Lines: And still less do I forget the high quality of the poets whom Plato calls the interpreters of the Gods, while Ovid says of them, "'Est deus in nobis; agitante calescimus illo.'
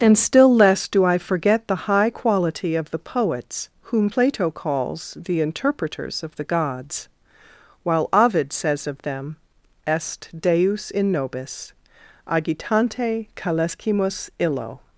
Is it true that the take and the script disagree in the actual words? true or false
false